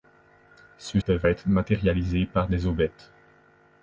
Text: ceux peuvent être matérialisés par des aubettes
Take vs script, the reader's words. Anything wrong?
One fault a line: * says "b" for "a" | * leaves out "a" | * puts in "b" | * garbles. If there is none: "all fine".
all fine